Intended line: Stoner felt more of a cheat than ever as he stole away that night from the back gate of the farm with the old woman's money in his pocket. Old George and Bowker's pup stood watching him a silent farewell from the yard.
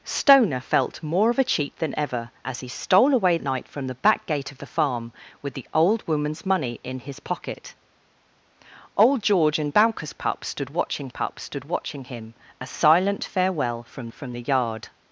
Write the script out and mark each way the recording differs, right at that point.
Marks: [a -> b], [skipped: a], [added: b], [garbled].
Stoner felt more of a cheat than ever as he stole away [skipped: that] night from the back gate of the farm with the old woman's money in his pocket. Old George and Bowker's pup stood watching [added: pup stood watching] him a silent farewell from [added: from] the yard.